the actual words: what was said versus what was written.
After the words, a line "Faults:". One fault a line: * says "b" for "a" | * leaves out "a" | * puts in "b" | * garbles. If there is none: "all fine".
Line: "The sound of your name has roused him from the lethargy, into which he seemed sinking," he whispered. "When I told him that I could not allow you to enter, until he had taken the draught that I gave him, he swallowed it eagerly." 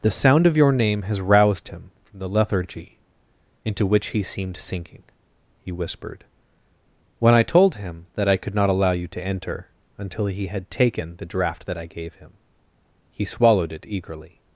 "The sound of your name has roused him from the lethargy, into which he seemed sinking," he whispered. "When I told him that I could not allow you to enter, until he had taken the draught that I gave him, he swallowed it eagerly."
Faults:
all fine